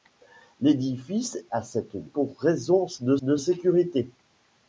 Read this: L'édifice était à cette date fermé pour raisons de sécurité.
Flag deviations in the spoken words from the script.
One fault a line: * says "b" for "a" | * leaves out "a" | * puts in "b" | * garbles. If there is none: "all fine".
* leaves out "était"
* leaves out "date fermé"
* puts in "de"